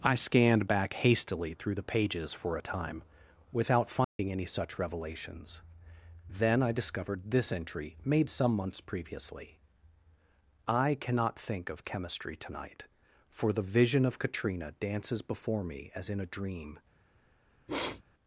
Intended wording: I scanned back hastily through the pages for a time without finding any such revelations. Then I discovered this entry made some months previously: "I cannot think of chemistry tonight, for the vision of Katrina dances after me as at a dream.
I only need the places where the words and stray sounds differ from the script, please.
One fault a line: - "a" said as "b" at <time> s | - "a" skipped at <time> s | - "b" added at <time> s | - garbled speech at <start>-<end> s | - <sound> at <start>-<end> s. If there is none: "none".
- dropout at 4.0-4.2 s
- "after" said as "before" at 15.2 s
- "at" said as "in" at 16.1 s
- sniff at 17.7-18.0 s